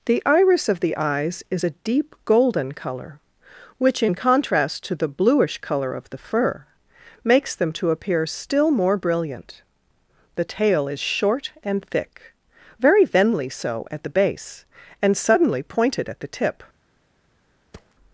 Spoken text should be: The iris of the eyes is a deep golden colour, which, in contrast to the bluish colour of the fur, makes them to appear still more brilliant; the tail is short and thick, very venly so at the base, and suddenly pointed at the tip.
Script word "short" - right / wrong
right